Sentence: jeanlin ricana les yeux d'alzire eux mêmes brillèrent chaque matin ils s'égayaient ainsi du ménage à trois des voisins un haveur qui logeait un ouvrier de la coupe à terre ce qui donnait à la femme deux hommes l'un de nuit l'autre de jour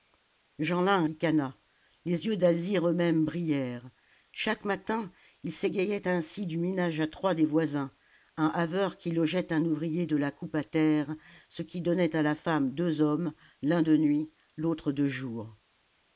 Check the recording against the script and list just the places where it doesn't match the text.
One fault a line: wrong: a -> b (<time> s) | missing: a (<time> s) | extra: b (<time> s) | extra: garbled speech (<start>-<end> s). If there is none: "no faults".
no faults